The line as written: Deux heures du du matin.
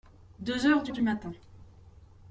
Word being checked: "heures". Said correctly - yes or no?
yes